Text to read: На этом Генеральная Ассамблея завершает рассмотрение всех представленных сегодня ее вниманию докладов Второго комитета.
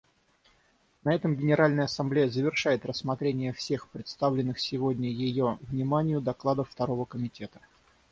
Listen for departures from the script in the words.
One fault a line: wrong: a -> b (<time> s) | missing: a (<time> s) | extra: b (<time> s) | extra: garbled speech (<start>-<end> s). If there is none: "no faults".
no faults